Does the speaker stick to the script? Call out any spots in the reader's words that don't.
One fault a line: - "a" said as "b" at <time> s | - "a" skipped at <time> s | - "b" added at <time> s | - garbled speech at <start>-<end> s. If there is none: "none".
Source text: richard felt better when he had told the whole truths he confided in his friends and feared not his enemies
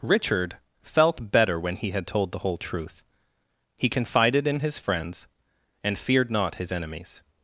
- "truths" said as "truth" at 2.6 s